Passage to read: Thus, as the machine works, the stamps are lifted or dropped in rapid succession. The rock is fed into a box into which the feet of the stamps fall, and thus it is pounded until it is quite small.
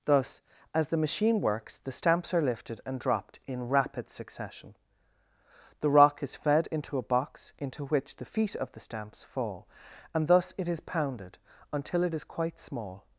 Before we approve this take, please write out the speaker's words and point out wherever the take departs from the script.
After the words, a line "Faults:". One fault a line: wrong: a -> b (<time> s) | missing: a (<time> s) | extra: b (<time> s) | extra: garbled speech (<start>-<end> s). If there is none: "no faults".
Thus, as the machine works, the stamps are lifted and dropped in rapid succession. The rock is fed into a box into which the feet of the stamps fall, and thus it is pounded until it is quite small.
Faults:
wrong: or -> and (2.9 s)